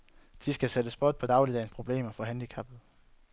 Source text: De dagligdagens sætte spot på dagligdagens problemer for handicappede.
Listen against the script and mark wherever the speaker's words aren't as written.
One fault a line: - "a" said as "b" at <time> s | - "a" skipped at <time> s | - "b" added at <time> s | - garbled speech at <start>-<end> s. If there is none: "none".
- "dagligdagens" said as "skal" at 0.5 s